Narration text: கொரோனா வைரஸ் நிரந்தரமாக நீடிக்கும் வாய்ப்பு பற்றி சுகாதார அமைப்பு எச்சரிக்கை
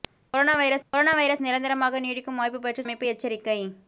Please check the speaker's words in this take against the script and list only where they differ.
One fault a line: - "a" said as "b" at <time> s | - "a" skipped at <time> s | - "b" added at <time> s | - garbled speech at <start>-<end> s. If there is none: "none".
- "கொரோனா வைரஸ்" added at 0.9 s
- "சுகாதார" skipped at 2.8 s